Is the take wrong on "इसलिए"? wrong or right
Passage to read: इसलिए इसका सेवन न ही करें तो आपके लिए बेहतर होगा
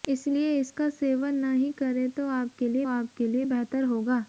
right